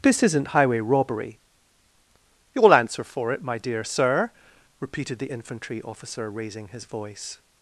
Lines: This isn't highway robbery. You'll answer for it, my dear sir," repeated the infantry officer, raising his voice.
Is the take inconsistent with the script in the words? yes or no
no